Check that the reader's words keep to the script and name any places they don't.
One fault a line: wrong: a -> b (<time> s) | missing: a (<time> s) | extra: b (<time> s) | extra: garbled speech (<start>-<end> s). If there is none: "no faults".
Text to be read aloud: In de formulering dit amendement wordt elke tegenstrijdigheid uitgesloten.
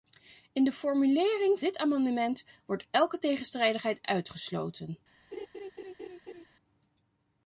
no faults